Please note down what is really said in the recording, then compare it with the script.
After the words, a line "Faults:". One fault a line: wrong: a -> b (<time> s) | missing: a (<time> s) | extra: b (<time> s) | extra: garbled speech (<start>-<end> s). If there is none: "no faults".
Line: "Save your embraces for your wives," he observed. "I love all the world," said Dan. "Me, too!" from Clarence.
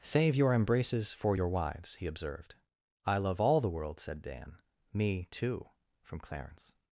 "Save your embraces for your wives," he observed. "I love all the world," said Dan. "Me, too!" from Clarence.
Faults:
no faults